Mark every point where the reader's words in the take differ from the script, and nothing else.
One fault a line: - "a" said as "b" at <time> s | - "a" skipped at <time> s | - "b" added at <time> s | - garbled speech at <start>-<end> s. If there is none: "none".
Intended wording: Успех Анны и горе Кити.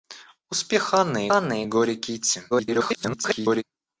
- "Анны" added at 1.3 s
- garbled speech at 2.5-3.6 s